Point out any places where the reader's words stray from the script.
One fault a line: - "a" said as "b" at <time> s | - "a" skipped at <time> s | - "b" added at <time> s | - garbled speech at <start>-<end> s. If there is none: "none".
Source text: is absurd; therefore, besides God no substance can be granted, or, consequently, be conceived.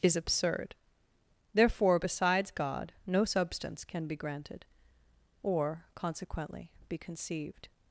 none